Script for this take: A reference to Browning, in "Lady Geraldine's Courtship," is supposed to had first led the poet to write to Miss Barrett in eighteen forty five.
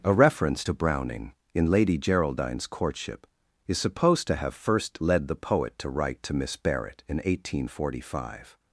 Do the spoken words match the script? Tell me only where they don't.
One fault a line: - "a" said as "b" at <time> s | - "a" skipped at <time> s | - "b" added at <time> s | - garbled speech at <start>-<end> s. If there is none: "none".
- "had" said as "have" at 4.4 s